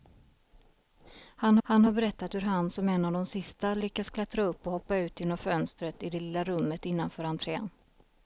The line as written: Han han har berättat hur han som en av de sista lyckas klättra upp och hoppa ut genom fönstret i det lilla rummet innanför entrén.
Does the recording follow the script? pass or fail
pass